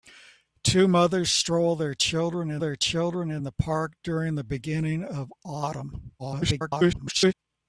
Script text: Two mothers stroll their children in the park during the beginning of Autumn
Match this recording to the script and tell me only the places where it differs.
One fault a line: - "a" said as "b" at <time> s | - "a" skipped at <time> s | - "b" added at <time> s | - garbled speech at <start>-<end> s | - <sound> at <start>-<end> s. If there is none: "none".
- "their children in" added at 2.6 s
- garbled speech at 6.2-7.3 s